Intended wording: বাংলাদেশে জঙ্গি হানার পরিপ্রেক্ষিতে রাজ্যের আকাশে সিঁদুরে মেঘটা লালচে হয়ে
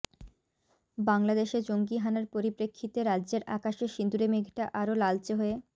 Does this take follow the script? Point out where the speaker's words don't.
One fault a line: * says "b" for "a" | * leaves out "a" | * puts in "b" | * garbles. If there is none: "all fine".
* puts in "আরও"